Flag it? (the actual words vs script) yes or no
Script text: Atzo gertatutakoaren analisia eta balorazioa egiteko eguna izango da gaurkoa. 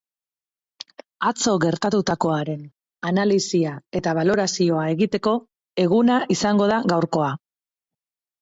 no